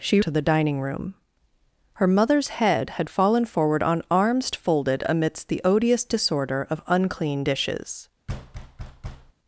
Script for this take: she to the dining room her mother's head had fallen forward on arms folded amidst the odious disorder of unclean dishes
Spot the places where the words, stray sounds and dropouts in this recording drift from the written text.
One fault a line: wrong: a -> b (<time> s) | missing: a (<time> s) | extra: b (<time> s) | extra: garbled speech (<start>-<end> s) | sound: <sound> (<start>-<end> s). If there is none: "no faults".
sound: thud (8.3-9.3 s)